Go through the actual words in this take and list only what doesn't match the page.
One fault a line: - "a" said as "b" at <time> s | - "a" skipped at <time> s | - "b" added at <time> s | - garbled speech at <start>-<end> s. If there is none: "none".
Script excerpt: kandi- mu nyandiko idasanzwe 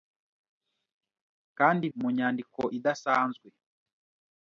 none